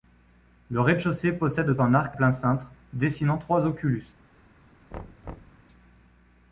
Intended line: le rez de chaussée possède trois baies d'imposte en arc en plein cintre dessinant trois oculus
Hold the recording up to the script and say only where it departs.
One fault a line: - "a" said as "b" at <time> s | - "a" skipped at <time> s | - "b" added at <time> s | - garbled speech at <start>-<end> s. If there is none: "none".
- "trois baies d'imposte" skipped at 1.8 s
- "en" skipped at 2.2 s